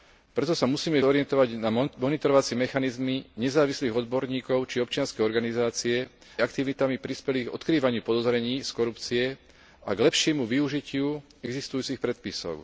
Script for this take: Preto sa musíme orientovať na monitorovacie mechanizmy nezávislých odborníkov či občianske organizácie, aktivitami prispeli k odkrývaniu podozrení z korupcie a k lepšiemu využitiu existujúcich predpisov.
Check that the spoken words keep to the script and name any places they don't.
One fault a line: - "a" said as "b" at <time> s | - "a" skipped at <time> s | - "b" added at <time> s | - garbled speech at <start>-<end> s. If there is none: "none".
none